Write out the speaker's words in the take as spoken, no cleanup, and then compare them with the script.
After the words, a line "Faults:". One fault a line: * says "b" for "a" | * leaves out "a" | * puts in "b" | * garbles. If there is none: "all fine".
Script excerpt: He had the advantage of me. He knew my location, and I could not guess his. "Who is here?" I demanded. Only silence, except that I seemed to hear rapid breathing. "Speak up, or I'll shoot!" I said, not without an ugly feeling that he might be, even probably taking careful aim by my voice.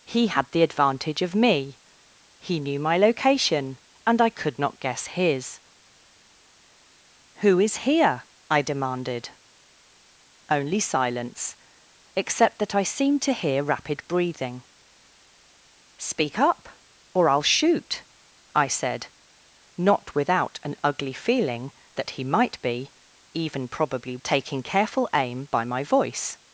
He had the advantage of me. He knew my location, and I could not guess his. "Who is here?" I demanded. Only silence, except that I seemed to hear rapid breathing. "Speak up, or I'll shoot!" I said, not without an ugly feeling that he might be, even probably taking careful aim by my voice.
Faults:
all fine